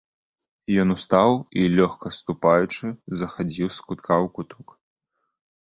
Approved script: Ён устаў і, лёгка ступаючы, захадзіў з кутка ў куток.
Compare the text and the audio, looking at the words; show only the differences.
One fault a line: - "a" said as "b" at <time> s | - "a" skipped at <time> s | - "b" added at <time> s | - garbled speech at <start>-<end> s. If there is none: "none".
none